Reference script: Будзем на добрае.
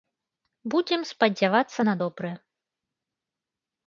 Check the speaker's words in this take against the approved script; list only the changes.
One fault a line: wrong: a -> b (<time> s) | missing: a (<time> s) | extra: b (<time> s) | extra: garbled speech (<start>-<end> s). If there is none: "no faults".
extra: спадзявацца (1.1 s)